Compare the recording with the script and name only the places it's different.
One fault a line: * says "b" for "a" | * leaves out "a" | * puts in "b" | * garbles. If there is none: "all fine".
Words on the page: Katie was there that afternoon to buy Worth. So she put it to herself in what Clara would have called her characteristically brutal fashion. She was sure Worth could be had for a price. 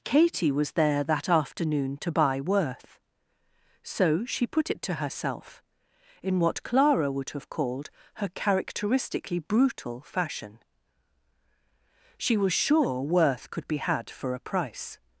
all fine